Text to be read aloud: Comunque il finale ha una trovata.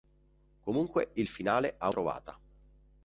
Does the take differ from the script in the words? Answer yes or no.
yes